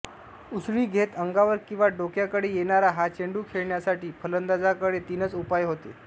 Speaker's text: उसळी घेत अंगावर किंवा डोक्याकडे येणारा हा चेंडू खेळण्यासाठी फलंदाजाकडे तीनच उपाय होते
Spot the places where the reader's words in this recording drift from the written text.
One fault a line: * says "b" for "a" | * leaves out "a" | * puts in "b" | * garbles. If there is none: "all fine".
all fine